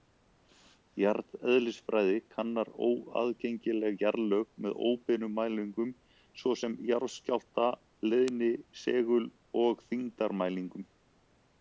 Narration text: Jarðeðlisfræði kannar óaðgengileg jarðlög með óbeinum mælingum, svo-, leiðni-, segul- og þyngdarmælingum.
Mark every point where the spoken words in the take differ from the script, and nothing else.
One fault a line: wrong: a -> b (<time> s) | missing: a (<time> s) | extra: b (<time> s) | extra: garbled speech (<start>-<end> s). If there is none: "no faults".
extra: sem jarðskjálfta (6.6 s)